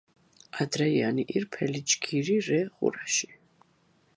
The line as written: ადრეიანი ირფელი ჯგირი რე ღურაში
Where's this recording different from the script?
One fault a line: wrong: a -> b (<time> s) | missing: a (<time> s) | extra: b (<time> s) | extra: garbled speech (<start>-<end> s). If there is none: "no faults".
no faults